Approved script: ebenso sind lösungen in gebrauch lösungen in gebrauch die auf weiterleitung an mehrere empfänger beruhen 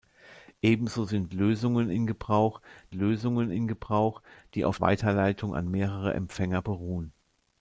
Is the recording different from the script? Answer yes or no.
no